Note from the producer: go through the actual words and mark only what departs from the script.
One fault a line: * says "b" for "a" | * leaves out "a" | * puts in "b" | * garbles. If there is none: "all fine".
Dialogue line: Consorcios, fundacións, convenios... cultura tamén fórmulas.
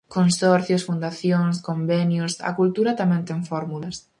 * puts in "a"
* puts in "ten"